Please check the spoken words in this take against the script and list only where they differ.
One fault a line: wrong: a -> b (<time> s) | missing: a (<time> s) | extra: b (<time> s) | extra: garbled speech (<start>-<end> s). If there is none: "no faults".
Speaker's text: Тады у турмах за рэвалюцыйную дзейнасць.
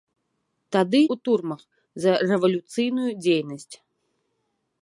no faults